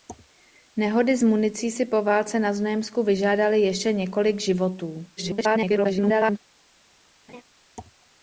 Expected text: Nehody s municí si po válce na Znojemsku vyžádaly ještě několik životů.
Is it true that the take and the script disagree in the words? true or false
true